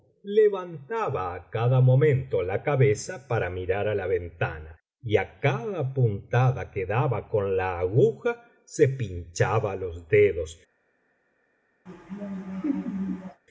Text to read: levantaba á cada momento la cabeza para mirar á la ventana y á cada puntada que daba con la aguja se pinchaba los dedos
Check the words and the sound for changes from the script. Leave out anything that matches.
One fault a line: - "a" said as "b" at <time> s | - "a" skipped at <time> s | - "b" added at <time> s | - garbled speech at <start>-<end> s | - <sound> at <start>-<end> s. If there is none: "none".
- laugh at 11.9-13.4 s